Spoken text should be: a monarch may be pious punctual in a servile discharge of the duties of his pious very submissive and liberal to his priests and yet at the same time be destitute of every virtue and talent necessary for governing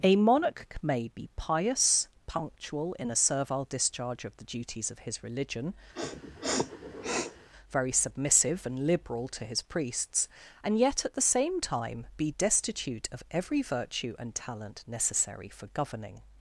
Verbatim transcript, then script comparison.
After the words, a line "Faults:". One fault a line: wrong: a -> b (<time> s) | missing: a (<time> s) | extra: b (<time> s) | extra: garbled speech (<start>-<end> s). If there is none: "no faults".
a monarch may be pious punctual in a servile discharge of the duties of his religion very submissive and liberal to his priests and yet at the same time be destitute of every virtue and talent necessary for governing
Faults:
wrong: pious -> religion (5.2 s)